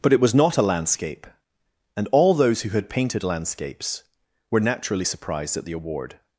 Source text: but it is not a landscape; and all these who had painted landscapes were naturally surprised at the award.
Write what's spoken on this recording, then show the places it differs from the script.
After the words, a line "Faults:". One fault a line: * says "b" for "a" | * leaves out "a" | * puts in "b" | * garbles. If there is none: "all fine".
but it was not a landscape; and all those who had painted landscapes were naturally surprised at the award.
Faults:
* says "was" for "is"
* says "those" for "these"